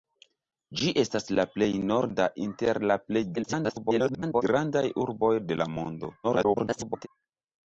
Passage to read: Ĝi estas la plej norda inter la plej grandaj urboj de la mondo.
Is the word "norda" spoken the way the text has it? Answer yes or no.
yes